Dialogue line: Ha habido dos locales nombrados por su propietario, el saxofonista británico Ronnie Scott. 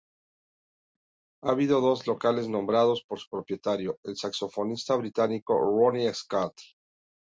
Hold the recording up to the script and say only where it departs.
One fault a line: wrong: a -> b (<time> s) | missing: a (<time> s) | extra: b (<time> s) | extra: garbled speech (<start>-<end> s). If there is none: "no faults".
no faults